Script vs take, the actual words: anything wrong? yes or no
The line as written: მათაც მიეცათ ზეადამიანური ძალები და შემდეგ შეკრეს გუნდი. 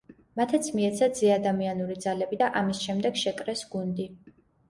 yes